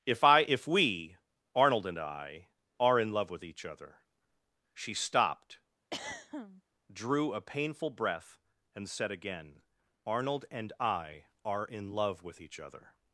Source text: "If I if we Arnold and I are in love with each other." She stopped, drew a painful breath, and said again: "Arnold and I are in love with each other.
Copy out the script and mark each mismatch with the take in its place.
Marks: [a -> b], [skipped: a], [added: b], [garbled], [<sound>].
"If I if we Arnold and I are in love with each other." She stopped, [throat clearing] drew a painful breath, and said again: "Arnold and I are in love with each other.